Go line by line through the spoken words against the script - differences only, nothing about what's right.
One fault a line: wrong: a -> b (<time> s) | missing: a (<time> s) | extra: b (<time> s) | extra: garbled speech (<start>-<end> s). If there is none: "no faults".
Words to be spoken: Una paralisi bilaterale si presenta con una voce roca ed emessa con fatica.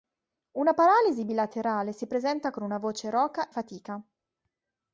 missing: ed emessa con (3.5 s)